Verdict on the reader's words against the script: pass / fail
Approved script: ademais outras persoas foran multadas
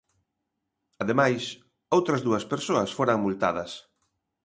fail